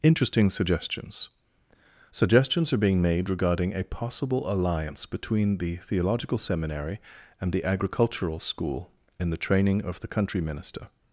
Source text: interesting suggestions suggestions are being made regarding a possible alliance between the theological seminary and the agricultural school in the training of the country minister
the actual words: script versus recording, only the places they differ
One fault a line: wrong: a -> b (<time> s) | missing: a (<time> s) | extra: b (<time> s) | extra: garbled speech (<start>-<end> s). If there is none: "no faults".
no faults